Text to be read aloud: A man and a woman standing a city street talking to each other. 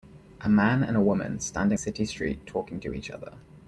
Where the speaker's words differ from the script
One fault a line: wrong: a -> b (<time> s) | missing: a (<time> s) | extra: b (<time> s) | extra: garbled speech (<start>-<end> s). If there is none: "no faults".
no faults